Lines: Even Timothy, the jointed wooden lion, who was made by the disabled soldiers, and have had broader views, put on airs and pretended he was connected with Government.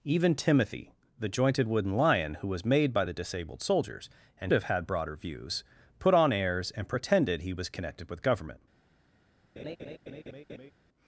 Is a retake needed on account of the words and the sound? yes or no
yes